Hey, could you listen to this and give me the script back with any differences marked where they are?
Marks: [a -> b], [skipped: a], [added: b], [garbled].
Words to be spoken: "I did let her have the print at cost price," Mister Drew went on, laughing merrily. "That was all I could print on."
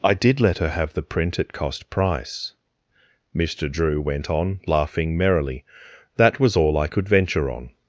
"I did let her have the print at cost price," Mister Drew went on, laughing merrily. "That was all I could [print -> venture] on."